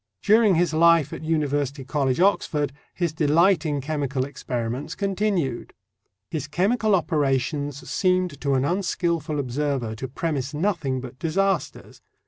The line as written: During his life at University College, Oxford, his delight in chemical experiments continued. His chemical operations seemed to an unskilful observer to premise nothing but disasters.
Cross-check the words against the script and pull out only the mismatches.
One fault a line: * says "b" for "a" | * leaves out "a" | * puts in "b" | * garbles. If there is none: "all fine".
all fine